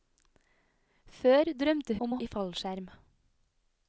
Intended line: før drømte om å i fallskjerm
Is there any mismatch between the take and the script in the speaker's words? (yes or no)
no